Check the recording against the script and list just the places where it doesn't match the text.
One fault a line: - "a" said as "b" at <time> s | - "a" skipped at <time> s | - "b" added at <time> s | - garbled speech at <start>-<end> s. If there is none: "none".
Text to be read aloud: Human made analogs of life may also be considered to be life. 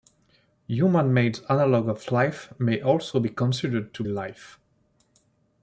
- "be" skipped at 4.0 s